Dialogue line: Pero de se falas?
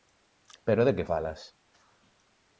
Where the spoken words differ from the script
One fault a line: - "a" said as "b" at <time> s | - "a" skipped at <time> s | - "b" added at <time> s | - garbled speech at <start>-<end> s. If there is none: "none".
- "se" said as "que" at 0.9 s